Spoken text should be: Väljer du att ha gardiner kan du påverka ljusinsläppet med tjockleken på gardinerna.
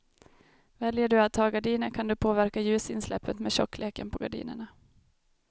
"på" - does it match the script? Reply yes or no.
yes